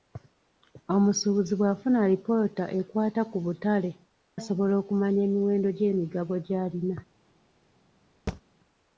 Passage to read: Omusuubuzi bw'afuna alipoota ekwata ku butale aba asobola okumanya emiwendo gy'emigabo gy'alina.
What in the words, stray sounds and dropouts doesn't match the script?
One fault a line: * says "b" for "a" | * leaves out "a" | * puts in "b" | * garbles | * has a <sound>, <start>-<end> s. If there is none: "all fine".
* leaves out "aba"
* has a thud, 8.3-8.4 s